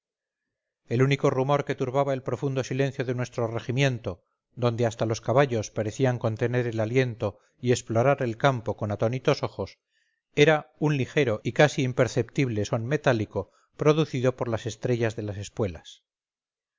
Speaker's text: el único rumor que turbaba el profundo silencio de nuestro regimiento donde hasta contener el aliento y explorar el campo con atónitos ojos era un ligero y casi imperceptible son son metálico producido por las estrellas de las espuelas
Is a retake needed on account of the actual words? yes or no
yes